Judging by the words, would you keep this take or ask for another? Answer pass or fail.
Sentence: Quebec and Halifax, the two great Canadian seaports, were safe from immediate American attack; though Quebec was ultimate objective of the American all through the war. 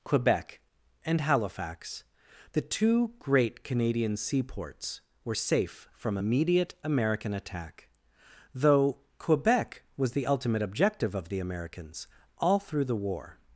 fail